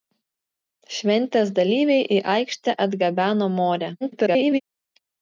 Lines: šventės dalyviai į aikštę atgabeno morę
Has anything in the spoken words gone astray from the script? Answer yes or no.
yes